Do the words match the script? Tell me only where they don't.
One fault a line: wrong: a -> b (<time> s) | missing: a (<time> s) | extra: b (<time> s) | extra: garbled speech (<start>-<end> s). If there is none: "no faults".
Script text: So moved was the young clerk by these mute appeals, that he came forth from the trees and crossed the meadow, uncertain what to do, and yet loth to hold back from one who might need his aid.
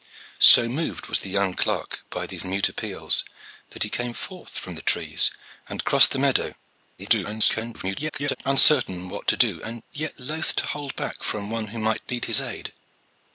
extra: garbled speech (7.0-8.4 s)